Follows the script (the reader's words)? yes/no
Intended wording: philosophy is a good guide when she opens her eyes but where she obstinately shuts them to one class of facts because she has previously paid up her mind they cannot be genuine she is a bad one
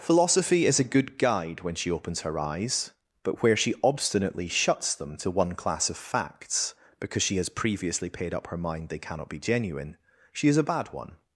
yes